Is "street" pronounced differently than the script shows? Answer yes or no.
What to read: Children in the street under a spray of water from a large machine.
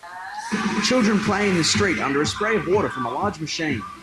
no